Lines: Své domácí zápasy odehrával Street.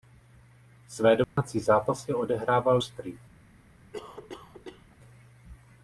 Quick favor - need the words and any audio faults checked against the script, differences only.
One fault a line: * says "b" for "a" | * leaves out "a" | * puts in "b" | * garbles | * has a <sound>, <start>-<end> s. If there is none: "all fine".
* has a dropout, 1.2-1.4 s
* has a cough, 3.9-5.0 s